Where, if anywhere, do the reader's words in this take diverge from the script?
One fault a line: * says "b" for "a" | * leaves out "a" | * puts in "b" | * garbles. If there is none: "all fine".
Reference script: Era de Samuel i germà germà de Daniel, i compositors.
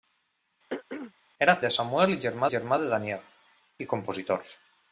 all fine